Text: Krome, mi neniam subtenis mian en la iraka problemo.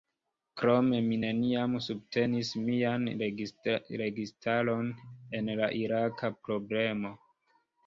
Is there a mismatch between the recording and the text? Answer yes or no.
yes